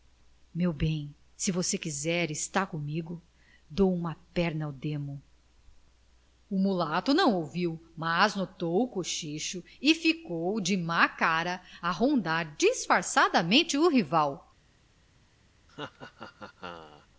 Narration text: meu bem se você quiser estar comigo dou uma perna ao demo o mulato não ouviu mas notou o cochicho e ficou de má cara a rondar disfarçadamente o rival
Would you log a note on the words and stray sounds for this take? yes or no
yes